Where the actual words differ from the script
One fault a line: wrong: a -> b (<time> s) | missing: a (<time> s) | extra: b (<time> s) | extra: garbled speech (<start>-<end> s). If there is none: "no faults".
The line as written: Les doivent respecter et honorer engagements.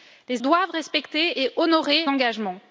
no faults